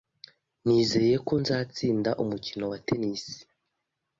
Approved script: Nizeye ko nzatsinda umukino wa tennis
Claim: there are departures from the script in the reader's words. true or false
false